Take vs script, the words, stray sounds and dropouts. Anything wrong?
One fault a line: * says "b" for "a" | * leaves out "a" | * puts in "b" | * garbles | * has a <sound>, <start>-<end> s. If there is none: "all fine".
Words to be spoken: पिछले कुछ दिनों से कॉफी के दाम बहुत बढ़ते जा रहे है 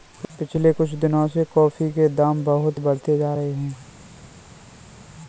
all fine